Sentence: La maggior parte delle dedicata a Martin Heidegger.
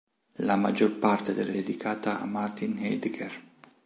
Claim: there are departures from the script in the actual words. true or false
false